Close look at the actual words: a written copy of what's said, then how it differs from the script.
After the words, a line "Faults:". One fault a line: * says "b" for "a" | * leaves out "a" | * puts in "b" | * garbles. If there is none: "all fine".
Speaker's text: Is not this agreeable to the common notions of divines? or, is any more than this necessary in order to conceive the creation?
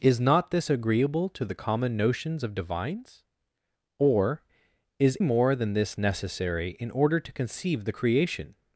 Is not this agreeable to the common notions of divines? or, is more than this necessary in order to conceive the creation?
Faults:
* leaves out "any"